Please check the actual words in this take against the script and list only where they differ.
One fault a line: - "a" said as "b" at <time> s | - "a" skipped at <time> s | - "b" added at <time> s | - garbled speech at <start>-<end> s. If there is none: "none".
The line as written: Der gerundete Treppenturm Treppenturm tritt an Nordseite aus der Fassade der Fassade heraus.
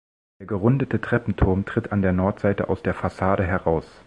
- "Treppenturm" skipped at 1.6 s
- "der" added at 2.0 s
- "der Fassade" skipped at 3.5 s